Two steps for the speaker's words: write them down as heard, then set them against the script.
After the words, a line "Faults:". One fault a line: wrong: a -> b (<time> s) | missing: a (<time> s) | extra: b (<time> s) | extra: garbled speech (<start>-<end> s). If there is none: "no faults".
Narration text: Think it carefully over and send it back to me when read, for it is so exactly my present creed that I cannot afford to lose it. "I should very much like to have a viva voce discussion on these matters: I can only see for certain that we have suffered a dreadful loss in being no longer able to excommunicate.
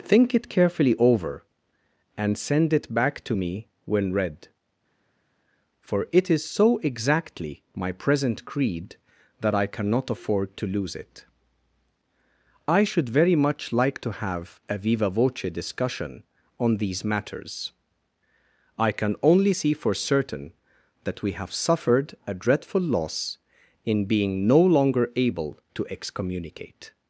Think it carefully over and send it back to me when read, for it is so exactly my present creed that I cannot afford to lose it. "I should very much like to have a viva voce discussion on these matters: I can only see for certain that we have suffered a dreadful loss in being no longer able to excommunicate.
Faults:
no faults